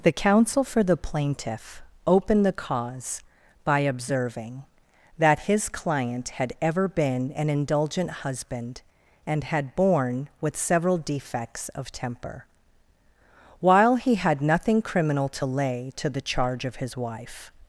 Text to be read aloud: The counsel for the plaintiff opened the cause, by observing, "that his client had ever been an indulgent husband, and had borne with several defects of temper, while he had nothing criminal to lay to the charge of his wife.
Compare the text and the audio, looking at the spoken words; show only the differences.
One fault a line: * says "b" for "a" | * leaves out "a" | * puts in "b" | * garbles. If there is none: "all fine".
all fine